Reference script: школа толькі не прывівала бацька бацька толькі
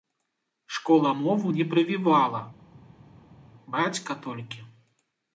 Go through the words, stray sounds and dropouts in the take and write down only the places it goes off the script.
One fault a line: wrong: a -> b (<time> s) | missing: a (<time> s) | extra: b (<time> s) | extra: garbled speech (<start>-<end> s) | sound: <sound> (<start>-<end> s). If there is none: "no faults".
wrong: толькі -> мову (1.1 s)
missing: бацька (4.1 s)